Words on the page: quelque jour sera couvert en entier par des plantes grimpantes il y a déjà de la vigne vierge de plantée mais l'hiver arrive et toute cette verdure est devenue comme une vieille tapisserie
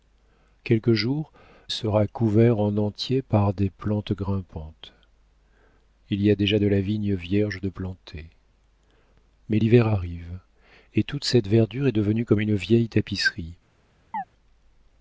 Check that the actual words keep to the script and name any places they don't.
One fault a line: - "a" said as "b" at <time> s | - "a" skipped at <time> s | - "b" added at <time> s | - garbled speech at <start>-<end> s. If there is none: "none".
none